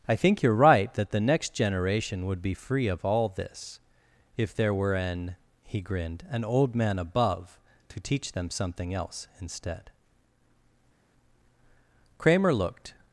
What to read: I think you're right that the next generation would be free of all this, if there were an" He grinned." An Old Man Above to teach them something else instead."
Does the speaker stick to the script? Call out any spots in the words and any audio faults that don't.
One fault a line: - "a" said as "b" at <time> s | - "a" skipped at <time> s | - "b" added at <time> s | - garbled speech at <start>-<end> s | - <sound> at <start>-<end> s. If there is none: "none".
- "Kramer looked" added at 12.2 s